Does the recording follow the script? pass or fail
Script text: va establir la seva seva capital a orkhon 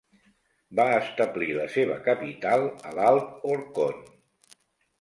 fail